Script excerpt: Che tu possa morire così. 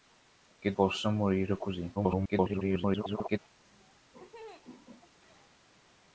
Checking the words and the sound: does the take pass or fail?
fail